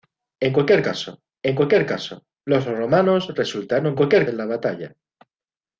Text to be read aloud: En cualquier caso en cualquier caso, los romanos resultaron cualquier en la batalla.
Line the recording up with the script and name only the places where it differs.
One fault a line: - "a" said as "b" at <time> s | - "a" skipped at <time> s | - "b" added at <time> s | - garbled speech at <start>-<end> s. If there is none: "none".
none